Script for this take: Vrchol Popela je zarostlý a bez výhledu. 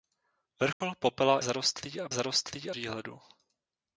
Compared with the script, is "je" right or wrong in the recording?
wrong